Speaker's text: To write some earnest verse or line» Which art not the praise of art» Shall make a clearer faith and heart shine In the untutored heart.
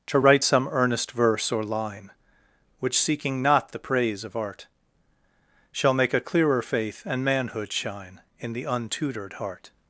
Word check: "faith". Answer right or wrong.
right